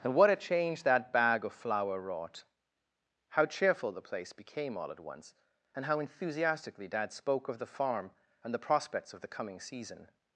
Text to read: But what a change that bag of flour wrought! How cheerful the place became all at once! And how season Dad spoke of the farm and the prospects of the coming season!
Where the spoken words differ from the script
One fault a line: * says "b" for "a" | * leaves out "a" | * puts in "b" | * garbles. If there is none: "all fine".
* says "And" for "But"
* says "enthusiastically" for "season"